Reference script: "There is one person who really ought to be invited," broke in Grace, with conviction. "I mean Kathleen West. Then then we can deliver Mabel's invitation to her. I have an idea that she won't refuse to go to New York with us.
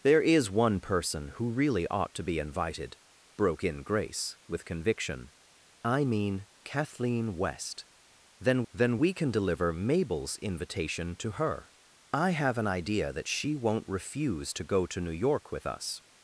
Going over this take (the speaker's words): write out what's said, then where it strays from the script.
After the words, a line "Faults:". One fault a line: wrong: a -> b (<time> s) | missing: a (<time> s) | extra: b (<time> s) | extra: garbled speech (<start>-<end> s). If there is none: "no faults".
"There is one person who really ought to be invited," broke in Grace, with conviction. "I mean Kathleen West. Then then we can deliver Mabel's invitation to her. I have an idea that she won't refuse to go to New York with us.
Faults:
no faults